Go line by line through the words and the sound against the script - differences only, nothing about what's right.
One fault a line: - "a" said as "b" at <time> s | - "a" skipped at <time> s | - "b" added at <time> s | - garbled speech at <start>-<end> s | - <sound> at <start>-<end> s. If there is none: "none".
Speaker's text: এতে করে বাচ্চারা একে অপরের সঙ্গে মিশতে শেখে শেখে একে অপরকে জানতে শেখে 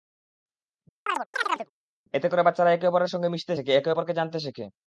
- chirp at 1.1-1.7 s
- "শেখে" skipped at 3.7 s